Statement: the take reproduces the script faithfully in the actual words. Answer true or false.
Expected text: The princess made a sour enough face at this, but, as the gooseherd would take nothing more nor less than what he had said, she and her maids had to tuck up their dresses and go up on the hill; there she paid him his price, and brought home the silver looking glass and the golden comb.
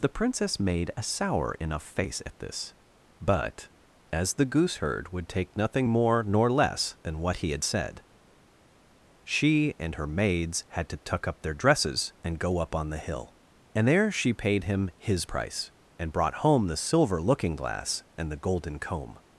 false